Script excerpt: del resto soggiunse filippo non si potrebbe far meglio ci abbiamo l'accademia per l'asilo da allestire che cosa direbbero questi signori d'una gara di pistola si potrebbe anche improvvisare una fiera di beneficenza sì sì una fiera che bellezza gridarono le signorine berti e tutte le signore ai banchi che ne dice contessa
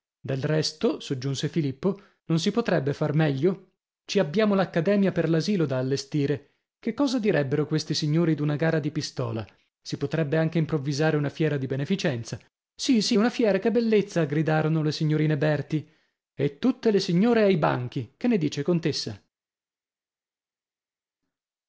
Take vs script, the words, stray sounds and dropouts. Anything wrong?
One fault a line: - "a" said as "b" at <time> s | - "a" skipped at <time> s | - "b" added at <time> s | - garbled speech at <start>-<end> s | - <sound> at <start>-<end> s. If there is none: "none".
none